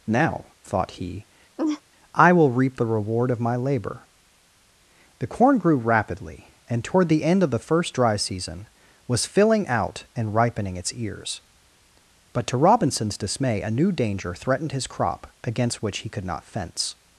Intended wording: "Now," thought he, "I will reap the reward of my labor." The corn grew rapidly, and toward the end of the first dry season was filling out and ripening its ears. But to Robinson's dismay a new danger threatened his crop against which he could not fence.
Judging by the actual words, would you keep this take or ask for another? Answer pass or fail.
pass